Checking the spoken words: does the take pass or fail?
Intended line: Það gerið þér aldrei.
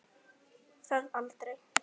fail